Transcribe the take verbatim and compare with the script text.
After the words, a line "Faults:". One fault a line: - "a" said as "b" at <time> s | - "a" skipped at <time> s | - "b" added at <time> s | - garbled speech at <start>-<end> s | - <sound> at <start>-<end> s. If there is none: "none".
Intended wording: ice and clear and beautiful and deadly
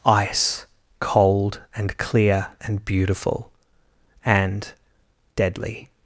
ice cold and clear and beautiful and deadly
Faults:
- "cold" added at 1.0 s